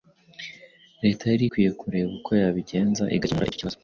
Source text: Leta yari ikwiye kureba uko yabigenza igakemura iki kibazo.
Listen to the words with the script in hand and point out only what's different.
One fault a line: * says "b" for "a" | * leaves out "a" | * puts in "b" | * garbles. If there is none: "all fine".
* says "icyo" for "iki"